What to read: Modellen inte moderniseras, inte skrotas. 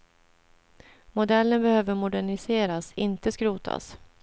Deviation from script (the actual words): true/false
true